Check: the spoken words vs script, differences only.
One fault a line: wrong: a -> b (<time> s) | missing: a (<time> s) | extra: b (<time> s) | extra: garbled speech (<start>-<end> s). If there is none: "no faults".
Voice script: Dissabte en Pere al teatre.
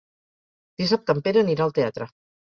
extra: anirà (1.4 s)